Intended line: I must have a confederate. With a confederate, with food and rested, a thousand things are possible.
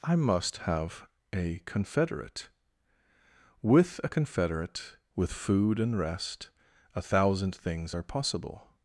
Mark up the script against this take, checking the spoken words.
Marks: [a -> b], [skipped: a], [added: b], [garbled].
I must have a confederate. With a confederate, with food and [rested, -> rest] a thousand things are possible.